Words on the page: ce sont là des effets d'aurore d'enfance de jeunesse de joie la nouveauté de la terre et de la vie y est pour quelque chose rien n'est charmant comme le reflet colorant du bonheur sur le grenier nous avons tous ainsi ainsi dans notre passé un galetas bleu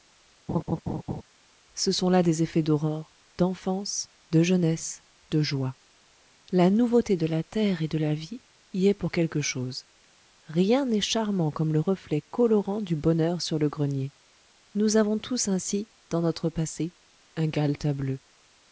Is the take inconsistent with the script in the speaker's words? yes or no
yes